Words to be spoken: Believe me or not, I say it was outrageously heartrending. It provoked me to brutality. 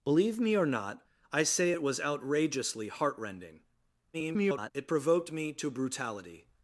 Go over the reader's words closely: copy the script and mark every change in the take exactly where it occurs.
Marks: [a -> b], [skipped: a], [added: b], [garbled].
Believe me or not, I say it was outrageously heartrending. [garbled] It provoked me to brutality.